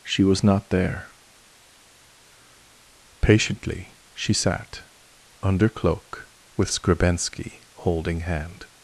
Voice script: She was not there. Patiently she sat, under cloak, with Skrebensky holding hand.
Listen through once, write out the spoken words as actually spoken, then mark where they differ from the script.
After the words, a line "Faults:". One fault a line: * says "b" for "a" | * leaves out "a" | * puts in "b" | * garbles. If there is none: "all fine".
She was not there. Patiently she sat, under cloak, with Skrebensky holding hand.
Faults:
all fine